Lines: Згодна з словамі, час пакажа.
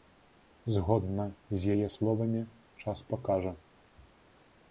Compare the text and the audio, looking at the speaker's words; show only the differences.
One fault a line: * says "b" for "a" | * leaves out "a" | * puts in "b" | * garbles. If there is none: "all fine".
* puts in "яе"